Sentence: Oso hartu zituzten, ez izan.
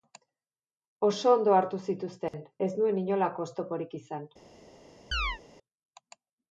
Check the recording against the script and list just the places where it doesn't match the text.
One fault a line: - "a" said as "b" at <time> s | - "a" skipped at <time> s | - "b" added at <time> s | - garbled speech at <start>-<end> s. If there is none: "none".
- "ondo" added at 1.3 s
- "nuen inolako oztoporik" added at 2.8 s